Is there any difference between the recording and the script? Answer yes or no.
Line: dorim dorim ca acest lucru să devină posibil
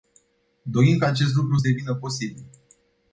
yes